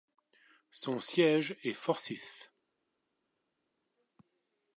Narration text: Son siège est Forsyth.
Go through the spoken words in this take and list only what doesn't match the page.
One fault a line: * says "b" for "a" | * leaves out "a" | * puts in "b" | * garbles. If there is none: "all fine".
all fine